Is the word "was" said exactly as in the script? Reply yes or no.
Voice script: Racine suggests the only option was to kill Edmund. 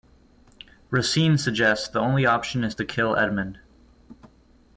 no